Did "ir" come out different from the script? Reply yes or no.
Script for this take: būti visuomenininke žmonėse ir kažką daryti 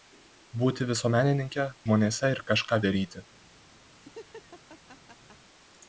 no